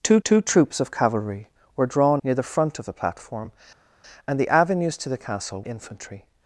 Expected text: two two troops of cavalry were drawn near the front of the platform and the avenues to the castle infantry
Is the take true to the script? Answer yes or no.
yes